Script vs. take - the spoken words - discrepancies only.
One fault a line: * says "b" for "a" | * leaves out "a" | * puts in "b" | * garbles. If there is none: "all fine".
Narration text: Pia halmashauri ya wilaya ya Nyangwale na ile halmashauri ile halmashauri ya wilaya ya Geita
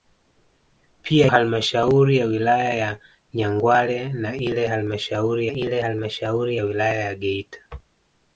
all fine